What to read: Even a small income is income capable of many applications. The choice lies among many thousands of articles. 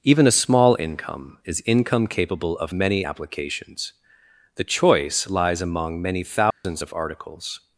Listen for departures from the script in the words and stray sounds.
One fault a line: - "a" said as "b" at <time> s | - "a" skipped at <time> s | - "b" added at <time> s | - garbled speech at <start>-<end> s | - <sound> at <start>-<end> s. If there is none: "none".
- dropout at 6.5-6.6 s